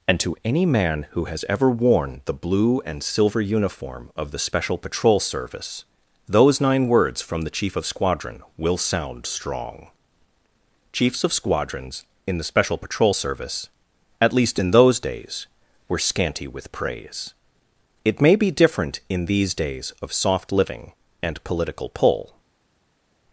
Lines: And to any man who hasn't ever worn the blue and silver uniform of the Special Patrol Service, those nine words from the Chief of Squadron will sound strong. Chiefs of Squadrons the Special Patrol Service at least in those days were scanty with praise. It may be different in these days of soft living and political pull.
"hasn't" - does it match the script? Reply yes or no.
no